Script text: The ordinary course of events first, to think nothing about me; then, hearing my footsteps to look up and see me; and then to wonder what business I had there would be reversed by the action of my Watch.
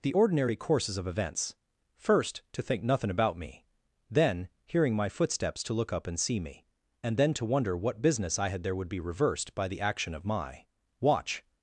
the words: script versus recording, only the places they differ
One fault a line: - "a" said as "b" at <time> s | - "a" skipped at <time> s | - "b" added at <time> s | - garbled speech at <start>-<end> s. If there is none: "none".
- "course" said as "courses" at 0.5 s